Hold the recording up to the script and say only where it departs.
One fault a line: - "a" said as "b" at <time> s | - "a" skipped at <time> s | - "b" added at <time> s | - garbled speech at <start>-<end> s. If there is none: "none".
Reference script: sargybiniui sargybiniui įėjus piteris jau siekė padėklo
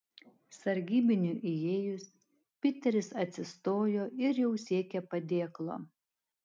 - "sargybiniui" skipped at 1.5 s
- "atsistojo ir" added at 3.3 s